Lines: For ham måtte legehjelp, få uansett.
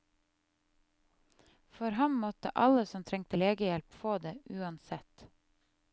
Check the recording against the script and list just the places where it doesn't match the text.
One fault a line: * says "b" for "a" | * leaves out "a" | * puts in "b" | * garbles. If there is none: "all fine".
* puts in "alle som trengte"
* puts in "det"